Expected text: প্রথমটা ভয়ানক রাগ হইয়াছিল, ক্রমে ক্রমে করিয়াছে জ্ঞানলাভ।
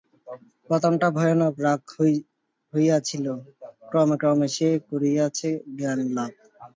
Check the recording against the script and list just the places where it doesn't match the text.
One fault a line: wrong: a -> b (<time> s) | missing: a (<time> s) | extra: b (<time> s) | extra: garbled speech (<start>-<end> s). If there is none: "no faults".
extra: সে (4.6 s)